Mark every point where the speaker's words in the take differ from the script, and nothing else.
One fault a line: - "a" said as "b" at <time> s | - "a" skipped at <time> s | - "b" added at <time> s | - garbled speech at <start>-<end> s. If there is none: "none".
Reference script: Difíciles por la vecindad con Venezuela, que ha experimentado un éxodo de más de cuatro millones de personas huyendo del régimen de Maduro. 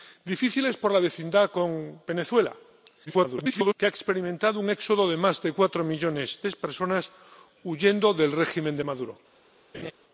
- garbled speech at 3.1-3.7 s